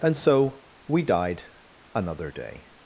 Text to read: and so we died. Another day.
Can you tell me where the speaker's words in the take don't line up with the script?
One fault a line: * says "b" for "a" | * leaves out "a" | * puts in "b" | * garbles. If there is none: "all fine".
all fine